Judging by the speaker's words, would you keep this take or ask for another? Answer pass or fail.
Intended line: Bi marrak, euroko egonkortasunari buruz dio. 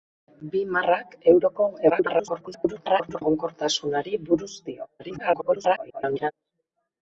fail